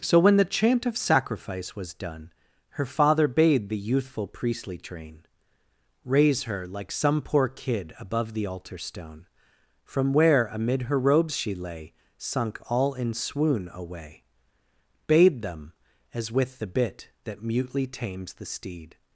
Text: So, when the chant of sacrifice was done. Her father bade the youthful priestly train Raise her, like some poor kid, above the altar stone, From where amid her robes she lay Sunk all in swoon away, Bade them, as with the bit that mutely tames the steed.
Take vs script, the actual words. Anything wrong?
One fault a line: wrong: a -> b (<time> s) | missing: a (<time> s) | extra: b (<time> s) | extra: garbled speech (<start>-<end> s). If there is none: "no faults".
no faults